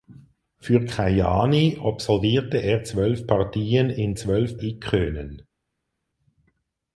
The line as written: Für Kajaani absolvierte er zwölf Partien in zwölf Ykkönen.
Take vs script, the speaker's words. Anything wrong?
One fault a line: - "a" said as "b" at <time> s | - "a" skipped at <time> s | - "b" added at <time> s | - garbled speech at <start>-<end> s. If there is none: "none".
none